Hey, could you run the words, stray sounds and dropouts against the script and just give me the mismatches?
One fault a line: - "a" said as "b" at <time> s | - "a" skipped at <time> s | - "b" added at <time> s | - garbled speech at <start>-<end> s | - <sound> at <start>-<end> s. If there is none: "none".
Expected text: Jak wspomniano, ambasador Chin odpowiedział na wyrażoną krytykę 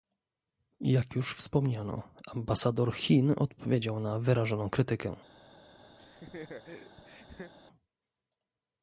- "już" added at 1.1 s
- laugh at 6.0-7.5 s